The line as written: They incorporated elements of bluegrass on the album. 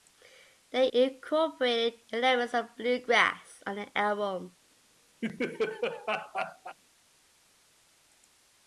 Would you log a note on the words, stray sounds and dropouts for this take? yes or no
yes